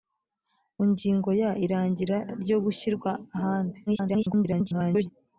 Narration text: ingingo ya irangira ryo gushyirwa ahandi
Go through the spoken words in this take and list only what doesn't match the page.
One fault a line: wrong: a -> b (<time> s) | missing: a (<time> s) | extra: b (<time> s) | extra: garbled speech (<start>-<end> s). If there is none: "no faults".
extra: garbled speech (3.9-5.1 s)